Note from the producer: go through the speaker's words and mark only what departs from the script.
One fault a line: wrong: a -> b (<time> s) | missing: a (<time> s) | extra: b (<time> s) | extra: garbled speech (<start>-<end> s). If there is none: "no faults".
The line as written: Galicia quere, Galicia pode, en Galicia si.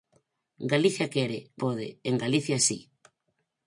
missing: Galicia (1.4 s)